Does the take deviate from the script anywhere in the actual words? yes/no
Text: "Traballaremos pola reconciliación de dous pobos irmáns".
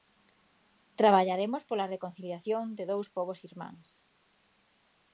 no